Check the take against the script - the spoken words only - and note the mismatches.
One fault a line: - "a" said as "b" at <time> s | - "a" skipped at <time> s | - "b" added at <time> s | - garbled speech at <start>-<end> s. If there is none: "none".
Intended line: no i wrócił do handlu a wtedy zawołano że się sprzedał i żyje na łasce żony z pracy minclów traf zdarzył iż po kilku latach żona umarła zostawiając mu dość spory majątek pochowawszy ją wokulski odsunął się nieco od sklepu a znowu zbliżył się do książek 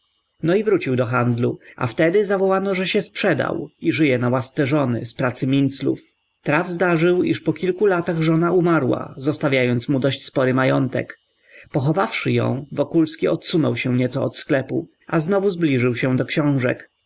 none